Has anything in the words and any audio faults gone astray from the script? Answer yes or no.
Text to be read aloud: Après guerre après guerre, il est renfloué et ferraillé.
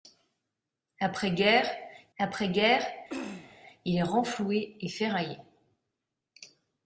yes